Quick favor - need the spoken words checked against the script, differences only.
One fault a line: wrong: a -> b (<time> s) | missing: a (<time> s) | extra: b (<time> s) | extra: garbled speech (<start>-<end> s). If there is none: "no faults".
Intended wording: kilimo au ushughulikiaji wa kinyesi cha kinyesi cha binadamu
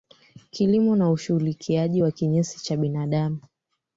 wrong: au -> na (0.9 s)
missing: kinyesi cha (2.8 s)